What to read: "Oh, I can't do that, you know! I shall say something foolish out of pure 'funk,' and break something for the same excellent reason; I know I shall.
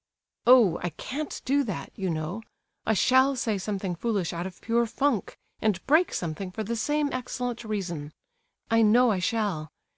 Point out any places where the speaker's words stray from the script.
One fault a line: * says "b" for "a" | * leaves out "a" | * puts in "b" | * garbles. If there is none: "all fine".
all fine